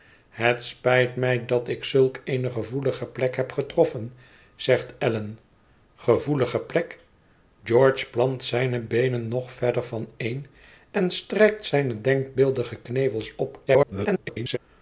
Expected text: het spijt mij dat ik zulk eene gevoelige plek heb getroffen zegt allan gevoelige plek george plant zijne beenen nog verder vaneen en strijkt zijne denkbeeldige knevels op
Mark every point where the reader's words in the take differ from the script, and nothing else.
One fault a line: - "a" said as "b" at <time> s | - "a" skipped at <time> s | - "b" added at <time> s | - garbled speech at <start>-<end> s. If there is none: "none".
- garbled speech at 13.7-14.6 s